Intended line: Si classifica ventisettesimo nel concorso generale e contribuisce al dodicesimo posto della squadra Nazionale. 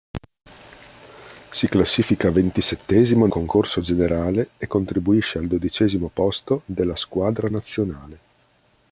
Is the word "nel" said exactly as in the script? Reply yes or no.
no